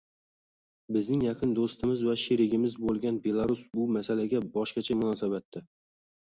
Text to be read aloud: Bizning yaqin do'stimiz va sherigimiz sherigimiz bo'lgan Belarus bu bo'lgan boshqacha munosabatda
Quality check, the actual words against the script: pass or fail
fail